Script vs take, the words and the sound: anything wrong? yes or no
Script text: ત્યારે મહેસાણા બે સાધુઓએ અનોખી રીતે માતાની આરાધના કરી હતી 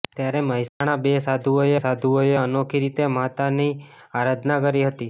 yes